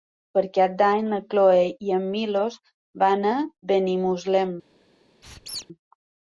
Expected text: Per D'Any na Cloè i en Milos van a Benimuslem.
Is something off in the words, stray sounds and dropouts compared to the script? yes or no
yes